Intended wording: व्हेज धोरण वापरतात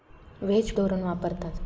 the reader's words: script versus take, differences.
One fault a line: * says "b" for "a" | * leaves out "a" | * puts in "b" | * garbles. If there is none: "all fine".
all fine